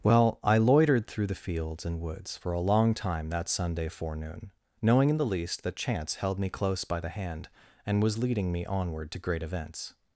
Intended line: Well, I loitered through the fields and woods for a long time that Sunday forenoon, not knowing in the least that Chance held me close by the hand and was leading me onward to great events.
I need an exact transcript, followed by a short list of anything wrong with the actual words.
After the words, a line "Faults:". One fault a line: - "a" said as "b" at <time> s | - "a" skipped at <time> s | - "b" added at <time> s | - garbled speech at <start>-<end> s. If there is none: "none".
Well, I loitered through the fields and woods for a long time that Sunday forenoon, knowing in the least that Chance held me close by the hand and was leading me onward to great events.
Faults:
- "not" skipped at 4.5 s